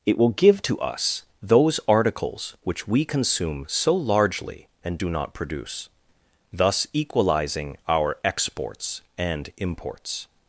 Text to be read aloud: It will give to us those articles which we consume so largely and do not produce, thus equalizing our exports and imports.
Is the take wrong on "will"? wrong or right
right